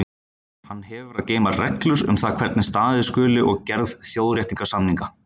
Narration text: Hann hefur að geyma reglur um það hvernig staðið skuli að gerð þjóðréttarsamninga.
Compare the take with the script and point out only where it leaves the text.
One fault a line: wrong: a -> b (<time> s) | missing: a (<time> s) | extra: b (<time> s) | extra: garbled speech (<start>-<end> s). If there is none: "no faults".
no faults